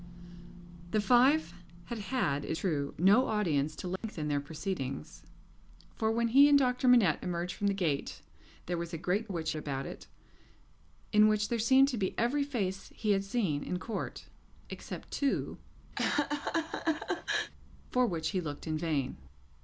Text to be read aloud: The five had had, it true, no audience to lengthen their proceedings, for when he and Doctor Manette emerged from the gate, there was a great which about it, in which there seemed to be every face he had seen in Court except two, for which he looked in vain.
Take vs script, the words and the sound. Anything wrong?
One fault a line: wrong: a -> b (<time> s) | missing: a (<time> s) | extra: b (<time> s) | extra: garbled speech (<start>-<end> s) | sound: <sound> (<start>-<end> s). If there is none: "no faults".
sound: dropout (4.0-4.0 s)
sound: laugh (16.0-17.5 s)